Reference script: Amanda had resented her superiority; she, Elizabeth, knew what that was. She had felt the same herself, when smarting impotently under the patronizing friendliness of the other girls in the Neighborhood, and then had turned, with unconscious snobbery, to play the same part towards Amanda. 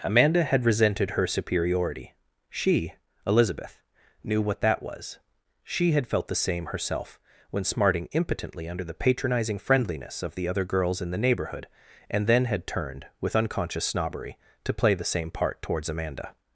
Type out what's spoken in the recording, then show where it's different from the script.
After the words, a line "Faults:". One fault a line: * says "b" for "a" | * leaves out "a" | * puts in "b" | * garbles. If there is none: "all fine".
Amanda had resented her superiority; she, Elizabeth, knew what that was. She had felt the same herself, when smarting impotently under the patronizing friendliness of the other girls in the Neighborhood, and then had turned, with unconscious snobbery, to play the same part towards Amanda.
Faults:
all fine